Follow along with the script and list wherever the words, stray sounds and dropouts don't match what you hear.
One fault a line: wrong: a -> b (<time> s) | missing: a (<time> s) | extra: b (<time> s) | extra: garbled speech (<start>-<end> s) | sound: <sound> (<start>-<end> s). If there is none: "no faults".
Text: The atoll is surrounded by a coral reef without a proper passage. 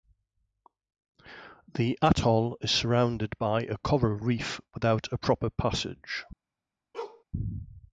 sound: bark (6.9-7.2 s)